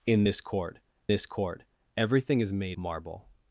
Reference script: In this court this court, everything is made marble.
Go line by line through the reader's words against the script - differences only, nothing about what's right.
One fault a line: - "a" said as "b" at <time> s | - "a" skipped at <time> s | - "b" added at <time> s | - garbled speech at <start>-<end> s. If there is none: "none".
none